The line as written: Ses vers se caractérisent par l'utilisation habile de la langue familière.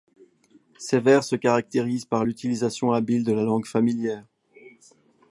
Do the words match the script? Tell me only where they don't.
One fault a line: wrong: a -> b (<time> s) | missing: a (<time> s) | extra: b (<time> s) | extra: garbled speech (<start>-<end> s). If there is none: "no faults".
no faults